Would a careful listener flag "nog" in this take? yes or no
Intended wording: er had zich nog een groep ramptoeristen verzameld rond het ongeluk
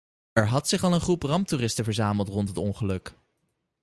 yes